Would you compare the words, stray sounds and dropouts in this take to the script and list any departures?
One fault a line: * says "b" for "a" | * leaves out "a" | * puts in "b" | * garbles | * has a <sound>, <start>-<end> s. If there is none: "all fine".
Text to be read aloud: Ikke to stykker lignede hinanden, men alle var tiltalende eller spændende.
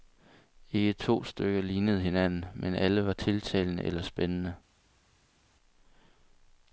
all fine